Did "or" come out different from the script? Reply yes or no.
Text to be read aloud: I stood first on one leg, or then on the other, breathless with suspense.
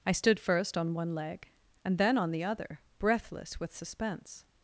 yes